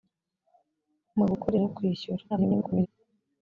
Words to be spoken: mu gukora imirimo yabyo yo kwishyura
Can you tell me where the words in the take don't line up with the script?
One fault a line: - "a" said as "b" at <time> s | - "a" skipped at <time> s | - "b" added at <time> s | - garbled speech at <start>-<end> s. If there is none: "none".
- "imirimo yabyo" skipped at 1.6 s
- garbled speech at 2.3-2.9 s